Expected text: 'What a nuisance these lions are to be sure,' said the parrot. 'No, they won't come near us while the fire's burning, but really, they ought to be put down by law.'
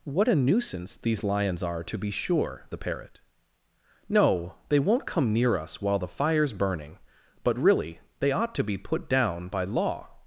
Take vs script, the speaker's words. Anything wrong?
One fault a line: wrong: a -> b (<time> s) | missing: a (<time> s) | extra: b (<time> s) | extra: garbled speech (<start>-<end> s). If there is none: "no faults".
missing: said (2.7 s)